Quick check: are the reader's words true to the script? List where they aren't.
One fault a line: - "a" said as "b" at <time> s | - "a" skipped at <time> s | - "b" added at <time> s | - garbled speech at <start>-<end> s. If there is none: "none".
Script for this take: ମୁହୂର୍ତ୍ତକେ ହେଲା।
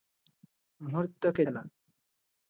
none